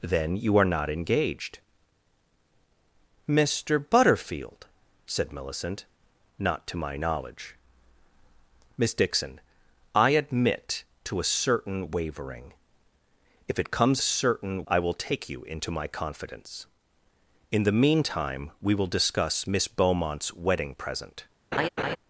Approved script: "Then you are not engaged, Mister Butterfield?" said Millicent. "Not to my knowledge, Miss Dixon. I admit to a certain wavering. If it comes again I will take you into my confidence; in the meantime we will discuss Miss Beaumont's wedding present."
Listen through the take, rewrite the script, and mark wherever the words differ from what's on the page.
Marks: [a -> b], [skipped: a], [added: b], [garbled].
"Then you are not engaged, Mister Butterfield?" said Millicent. "Not to my knowledge, Miss Dixon. I admit to a certain wavering. If it comes [again -> certain] I will take you into my confidence; in the meantime we will discuss Miss Beaumont's wedding present."